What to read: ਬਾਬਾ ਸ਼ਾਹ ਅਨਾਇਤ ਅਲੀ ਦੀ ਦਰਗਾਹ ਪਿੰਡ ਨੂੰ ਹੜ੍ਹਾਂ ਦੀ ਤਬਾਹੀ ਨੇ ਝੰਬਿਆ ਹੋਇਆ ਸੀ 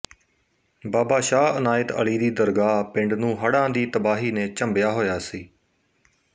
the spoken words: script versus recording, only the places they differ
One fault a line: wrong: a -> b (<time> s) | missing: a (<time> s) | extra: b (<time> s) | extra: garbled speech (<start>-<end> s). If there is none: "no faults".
no faults